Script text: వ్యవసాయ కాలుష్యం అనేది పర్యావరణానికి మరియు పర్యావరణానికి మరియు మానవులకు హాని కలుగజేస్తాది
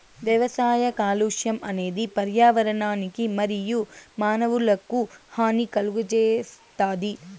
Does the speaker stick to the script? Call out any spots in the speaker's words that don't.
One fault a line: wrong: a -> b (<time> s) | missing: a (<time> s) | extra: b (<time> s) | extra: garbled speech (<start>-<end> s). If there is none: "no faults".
missing: పర్యావరణానికి మరియు (3.8 s)